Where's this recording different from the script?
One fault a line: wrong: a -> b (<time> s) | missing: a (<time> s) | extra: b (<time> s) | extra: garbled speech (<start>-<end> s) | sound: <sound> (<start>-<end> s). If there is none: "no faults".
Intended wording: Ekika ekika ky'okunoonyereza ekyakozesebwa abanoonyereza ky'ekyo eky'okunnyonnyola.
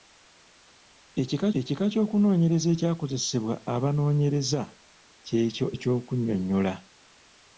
no faults